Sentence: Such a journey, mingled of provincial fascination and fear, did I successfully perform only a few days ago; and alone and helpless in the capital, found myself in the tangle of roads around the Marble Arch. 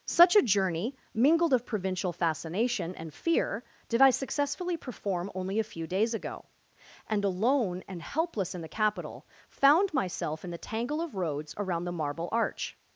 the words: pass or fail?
pass